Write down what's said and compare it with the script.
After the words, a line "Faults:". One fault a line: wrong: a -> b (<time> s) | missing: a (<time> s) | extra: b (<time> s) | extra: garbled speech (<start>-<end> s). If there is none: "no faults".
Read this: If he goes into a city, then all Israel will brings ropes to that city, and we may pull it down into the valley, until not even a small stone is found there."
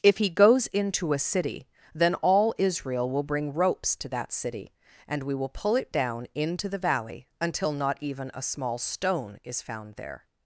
If he goes into a city, then all Israel will bring ropes to that city, and we will pull it down into the valley, until not even a small stone is found there."
Faults:
wrong: brings -> bring (3.2 s)
wrong: may -> will (5.3 s)